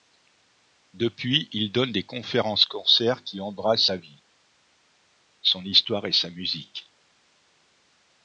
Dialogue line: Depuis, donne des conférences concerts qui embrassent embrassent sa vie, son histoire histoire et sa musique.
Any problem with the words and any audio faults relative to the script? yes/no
yes